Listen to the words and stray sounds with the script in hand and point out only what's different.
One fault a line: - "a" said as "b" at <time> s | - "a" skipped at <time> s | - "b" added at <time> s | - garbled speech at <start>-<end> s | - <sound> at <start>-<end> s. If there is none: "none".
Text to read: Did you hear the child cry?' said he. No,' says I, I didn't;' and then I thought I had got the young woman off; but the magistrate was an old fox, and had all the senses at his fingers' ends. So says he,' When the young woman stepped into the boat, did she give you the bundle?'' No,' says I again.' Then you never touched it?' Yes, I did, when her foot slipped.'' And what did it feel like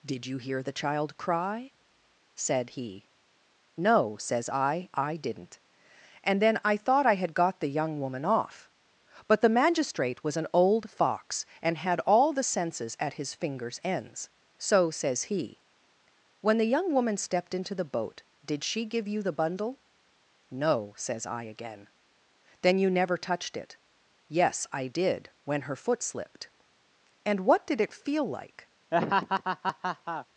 - laugh at 28.9-30.3 s